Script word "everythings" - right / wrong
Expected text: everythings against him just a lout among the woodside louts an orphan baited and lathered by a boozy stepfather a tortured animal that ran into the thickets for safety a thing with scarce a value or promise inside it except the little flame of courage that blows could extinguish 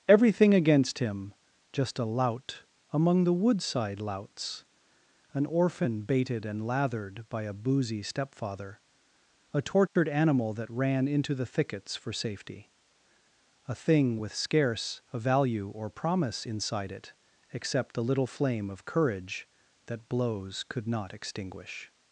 wrong